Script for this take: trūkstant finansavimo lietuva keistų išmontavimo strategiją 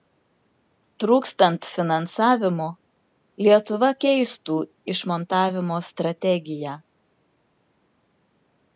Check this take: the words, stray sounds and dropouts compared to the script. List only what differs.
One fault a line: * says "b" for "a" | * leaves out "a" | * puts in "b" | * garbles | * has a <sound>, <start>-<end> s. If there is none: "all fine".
all fine